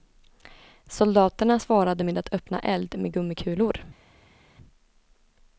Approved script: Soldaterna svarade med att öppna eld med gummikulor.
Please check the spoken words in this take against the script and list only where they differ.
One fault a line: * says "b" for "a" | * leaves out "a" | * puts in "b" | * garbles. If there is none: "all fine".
all fine